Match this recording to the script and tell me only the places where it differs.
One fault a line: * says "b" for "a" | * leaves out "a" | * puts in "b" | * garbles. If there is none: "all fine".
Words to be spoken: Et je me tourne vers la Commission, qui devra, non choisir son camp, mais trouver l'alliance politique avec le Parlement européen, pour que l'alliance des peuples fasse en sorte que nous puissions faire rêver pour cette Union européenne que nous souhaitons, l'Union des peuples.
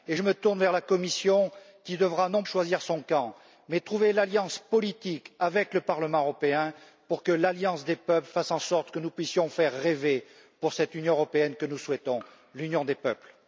all fine